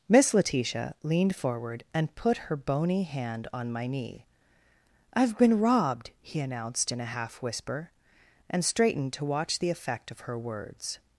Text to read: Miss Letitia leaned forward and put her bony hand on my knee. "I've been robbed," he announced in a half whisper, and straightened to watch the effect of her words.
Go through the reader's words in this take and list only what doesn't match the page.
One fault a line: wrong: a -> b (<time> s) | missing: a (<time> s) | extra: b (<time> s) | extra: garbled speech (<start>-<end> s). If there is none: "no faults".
no faults